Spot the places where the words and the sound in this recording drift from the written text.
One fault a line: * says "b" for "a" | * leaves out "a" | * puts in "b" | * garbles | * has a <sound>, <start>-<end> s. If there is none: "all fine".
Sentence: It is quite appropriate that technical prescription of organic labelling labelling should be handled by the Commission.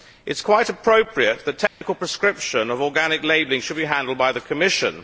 * has a dropout, 1.7-1.8 s
* leaves out "labelling"